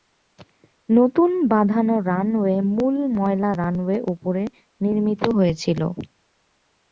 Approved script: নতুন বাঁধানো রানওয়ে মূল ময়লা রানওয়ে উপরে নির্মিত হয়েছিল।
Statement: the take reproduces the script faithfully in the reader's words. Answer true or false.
true